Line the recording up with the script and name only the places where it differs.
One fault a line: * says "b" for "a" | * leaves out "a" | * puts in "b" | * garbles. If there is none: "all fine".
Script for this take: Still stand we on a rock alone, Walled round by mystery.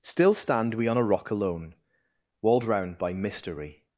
all fine